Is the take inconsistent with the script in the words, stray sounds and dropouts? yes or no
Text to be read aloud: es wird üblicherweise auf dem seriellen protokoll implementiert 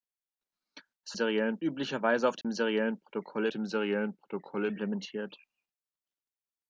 yes